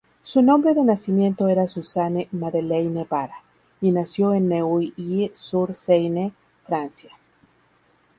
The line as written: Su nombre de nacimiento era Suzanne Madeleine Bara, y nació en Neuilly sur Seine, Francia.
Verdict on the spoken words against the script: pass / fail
pass